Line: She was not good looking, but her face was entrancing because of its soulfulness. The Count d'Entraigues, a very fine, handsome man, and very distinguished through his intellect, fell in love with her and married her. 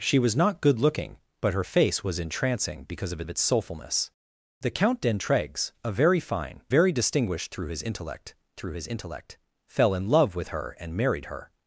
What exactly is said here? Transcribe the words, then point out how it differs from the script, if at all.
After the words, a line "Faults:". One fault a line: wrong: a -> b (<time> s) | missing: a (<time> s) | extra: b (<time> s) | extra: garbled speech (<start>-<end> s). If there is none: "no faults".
She was not good looking, but her face was entrancing because of of its soulfulness. The Count d'Entraigues, a very fine, very distinguished through his intellect through his intellect, fell in love with her and married her.
Faults:
extra: of (3.2 s)
wrong: handsome man and very distinguished -> very distinguished through his intellect (6.7 s)